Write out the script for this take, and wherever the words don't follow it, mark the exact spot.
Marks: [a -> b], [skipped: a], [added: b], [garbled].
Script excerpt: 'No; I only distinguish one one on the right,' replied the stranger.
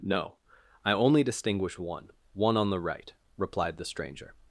'No; I only distinguish one one on the right,' replied the stranger.